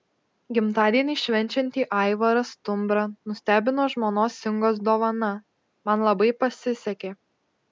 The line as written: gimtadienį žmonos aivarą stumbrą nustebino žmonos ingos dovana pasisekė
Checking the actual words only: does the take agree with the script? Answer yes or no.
no